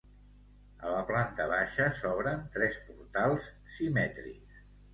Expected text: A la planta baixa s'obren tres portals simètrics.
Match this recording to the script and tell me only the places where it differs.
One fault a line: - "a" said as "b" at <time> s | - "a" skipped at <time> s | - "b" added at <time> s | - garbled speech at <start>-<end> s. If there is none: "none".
none